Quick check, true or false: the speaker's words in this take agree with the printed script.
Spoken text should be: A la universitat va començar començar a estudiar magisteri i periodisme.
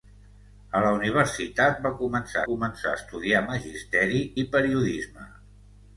true